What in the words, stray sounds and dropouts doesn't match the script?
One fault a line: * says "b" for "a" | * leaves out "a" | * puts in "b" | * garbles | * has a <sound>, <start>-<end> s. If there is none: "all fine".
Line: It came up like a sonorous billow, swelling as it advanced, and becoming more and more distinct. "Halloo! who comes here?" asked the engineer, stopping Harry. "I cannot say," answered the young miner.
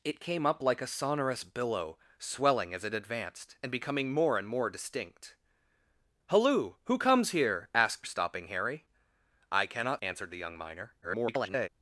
* leaves out "the engineer"
* leaves out "say"
* garbles